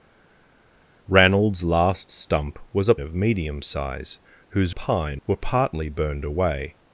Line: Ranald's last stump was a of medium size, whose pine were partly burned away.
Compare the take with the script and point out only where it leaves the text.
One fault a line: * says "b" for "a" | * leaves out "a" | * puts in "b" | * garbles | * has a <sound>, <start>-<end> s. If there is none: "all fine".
all fine